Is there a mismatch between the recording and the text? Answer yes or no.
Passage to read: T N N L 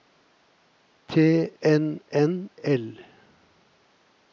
no